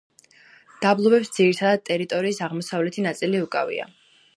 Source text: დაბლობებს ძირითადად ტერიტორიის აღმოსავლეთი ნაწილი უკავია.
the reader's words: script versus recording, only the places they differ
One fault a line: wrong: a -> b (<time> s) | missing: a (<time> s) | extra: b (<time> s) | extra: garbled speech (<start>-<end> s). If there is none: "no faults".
no faults